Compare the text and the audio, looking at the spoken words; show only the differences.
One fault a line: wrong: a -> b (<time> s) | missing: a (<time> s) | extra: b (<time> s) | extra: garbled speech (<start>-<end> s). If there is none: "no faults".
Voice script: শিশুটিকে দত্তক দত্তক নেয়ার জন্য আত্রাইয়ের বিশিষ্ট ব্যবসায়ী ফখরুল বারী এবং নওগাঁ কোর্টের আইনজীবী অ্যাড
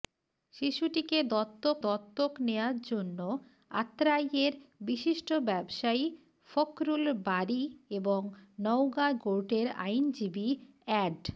no faults